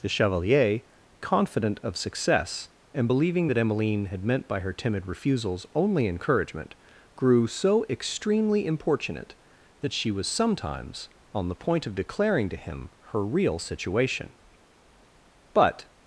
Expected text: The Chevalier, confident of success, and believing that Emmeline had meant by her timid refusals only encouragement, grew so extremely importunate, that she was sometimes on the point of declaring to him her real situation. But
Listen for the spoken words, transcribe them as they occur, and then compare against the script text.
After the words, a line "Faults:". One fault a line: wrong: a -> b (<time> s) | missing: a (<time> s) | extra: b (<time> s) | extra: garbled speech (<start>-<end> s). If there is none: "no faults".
The Chevalier, confident of success, and believing that Emmeline had meant by her timid refusals only encouragement, grew so extremely importunate, that she was sometimes on the point of declaring to him her real situation. But
Faults:
no faults